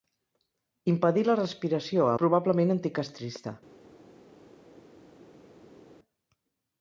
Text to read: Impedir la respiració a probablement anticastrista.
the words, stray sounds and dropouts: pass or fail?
pass